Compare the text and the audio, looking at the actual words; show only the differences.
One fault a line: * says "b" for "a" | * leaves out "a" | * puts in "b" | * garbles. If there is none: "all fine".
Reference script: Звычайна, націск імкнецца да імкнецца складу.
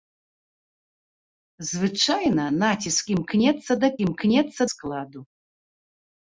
all fine